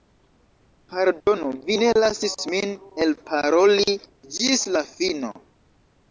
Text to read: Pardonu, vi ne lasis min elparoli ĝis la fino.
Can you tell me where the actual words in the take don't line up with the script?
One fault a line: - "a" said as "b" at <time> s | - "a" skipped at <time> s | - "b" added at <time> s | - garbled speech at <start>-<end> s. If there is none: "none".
none